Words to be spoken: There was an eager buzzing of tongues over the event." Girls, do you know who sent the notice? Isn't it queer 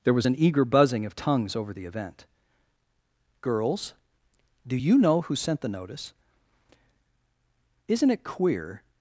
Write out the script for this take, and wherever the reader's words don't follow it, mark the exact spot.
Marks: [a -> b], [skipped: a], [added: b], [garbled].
There was an eager buzzing of tongues over the event." Girls, do you know who sent the notice? Isn't it queer